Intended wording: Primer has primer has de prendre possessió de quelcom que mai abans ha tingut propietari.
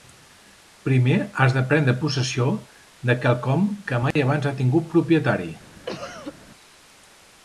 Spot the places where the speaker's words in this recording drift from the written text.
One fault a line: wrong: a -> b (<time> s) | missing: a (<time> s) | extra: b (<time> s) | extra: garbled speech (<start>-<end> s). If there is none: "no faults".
missing: primer has (1.5 s)